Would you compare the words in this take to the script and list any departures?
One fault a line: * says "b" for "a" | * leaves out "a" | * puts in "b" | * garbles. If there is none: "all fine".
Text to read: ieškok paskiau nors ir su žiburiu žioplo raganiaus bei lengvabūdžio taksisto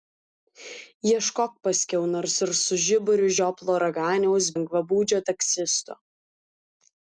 * leaves out "bei"